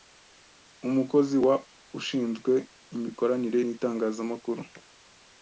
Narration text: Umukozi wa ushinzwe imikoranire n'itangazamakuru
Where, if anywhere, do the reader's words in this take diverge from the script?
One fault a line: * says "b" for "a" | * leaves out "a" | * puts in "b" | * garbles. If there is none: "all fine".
all fine